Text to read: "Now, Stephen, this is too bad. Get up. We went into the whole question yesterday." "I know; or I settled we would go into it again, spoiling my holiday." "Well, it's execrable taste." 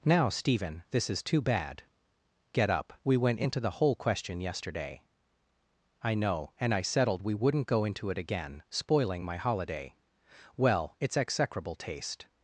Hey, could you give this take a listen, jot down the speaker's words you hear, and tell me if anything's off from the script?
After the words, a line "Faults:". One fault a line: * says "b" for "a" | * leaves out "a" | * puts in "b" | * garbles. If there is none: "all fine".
"Now, Stephen, this is too bad. Get up. We went into the whole question yesterday." "I know; and I settled we wouldn't go into it again, spoiling my holiday." "Well, it's execrable taste."
Faults:
* says "and" for "or"
* says "wouldn't" for "would"